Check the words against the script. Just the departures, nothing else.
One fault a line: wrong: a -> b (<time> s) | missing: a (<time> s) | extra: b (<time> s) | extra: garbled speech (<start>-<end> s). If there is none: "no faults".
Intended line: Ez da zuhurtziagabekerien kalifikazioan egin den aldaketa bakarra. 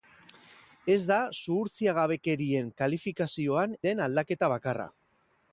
missing: egin (3.8 s)